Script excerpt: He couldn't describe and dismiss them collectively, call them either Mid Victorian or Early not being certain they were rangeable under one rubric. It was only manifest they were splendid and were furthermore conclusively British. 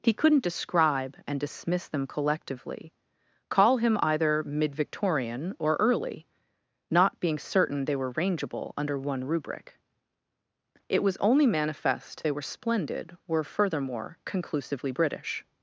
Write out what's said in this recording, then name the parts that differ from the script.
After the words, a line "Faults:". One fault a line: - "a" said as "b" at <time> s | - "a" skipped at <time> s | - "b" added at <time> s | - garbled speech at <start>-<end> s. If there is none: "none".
He couldn't describe and dismiss them collectively, call him either Mid Victorian or Early not being certain they were rangeable under one rubric. It was only manifest they were splendid were furthermore conclusively British.
Faults:
- "them" said as "him" at 3.8 s
- "and" skipped at 13.2 s